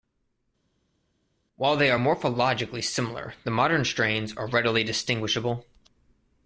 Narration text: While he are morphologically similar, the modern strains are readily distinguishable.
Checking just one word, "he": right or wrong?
wrong